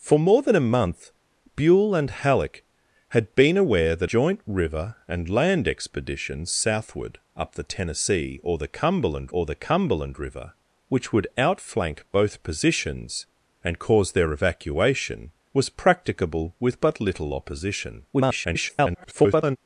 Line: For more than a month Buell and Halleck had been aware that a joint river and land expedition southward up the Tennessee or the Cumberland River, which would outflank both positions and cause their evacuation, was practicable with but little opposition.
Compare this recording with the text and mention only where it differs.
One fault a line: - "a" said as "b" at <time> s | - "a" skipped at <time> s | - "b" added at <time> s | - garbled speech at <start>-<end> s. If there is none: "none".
- "a" skipped at 4.1 s
- "or the Cumberland" added at 9.3 s
- garbled speech at 18.1-19.6 s